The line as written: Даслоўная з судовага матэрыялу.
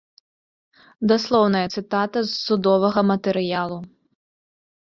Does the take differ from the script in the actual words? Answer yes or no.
yes